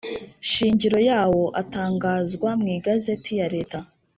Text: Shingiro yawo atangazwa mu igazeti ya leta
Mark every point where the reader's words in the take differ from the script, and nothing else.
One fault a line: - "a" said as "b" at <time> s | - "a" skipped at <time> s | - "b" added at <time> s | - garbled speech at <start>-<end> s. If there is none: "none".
none